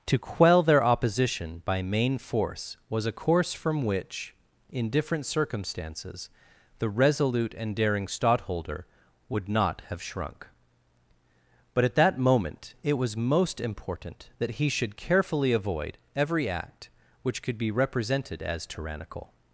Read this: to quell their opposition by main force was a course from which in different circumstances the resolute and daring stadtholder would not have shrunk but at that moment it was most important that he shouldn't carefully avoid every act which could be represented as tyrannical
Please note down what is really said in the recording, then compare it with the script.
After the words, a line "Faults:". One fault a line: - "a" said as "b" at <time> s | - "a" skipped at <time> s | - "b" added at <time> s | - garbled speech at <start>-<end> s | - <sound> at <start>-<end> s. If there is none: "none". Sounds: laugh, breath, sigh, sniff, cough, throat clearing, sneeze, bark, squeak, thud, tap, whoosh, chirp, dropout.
to quell their opposition by main force was a course from which in different circumstances the resolute and daring stadtholder would not have shrunk but at that moment it was most important that he should carefully avoid every act which could be represented as tyrannical
Faults:
- "shouldn't" said as "should" at 14.7 s